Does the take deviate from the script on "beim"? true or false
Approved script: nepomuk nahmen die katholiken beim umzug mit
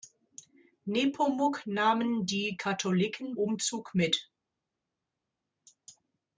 true